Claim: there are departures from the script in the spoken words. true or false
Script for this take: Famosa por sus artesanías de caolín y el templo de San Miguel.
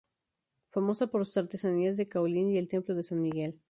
false